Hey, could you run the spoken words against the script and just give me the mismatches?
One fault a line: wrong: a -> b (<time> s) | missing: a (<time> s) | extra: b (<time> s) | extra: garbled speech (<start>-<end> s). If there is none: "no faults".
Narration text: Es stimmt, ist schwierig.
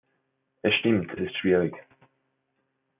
no faults